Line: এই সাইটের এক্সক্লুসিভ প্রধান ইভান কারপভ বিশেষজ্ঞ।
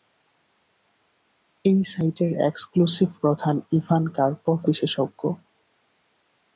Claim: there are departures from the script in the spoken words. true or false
false